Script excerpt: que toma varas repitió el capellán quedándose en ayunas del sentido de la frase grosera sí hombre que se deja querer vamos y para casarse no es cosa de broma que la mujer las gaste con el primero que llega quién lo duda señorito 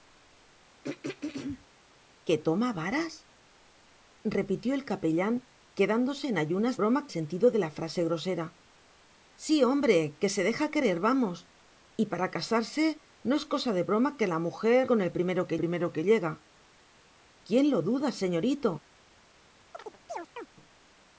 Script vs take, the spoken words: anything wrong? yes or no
yes